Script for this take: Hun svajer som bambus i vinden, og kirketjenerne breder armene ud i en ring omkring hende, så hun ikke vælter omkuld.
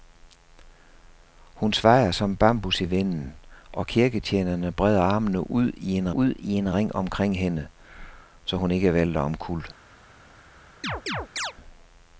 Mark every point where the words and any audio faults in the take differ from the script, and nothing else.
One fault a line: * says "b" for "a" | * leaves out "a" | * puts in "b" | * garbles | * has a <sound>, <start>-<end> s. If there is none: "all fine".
* puts in "ud i en"
* has a chirp, 10.8-11.5 s